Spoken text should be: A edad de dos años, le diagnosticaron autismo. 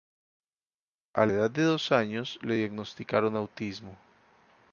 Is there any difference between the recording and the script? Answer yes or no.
no